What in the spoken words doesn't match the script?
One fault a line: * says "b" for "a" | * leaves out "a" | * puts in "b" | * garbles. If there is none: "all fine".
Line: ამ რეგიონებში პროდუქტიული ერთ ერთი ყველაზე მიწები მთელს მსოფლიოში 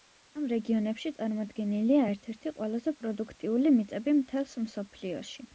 * says "წარმოდგენილია" for "პროდუქტიული"
* puts in "პროდუქტიული"